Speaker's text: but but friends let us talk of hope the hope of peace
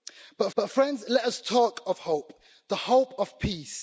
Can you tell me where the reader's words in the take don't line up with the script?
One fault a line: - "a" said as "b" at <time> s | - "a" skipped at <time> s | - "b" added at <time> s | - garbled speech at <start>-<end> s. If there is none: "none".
none